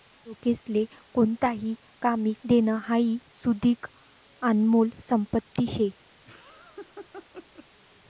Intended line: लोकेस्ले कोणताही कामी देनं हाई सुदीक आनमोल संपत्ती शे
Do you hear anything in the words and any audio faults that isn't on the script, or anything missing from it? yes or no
yes